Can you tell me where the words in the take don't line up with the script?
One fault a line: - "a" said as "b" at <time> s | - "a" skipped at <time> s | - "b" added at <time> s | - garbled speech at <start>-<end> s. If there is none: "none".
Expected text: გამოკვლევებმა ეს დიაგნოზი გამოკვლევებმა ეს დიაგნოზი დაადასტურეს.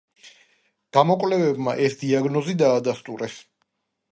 - "გამოკვლევებმა ეს დიაგნოზი" skipped at 2.6 s